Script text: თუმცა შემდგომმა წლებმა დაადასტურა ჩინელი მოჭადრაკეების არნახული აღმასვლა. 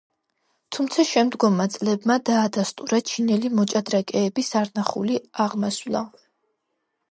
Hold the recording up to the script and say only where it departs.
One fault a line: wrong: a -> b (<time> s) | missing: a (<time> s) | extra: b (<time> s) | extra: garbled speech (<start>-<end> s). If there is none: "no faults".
no faults